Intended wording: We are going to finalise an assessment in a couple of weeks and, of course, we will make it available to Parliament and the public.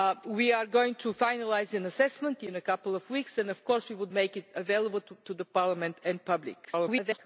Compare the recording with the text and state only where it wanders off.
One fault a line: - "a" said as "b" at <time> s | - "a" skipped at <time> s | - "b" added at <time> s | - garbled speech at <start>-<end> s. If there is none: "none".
- garbled speech at 6.6-7.2 s